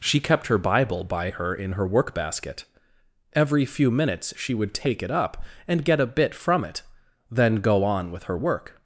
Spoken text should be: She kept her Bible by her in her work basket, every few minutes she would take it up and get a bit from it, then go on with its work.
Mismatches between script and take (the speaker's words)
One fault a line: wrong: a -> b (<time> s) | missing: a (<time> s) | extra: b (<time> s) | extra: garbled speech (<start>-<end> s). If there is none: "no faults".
wrong: its -> her (8.2 s)